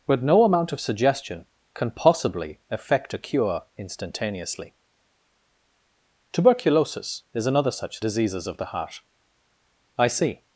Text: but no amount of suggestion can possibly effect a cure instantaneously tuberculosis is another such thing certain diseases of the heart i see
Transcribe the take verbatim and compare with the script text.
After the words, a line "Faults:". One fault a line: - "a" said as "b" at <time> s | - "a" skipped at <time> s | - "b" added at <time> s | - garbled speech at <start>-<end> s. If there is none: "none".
but no amount of suggestion can possibly effect a cure instantaneously tuberculosis is another such diseases of the heart i see
Faults:
- "thing certain" skipped at 8.0 s